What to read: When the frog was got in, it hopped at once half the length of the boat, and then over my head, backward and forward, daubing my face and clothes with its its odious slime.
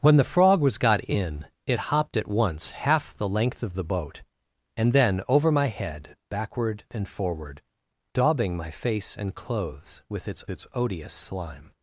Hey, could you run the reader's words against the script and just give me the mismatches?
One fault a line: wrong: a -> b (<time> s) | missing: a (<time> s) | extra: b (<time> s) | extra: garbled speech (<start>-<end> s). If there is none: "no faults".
no faults